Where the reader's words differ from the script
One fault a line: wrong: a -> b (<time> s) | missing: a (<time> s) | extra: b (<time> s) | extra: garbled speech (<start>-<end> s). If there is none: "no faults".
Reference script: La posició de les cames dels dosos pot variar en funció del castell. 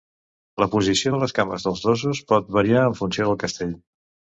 no faults